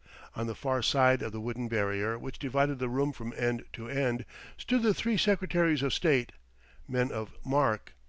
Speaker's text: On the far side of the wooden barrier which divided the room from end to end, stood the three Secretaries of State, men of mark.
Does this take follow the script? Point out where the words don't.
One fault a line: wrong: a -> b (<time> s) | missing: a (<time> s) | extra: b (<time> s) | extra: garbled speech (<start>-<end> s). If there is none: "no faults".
no faults